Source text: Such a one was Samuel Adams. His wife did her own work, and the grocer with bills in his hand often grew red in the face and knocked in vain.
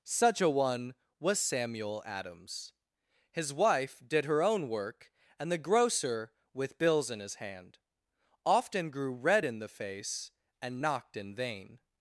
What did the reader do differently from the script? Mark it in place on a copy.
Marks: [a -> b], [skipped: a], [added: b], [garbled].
Such a one was Samuel Adams. His wife did her own work, and the grocer with bills in his hand often grew red in the face and knocked in vain.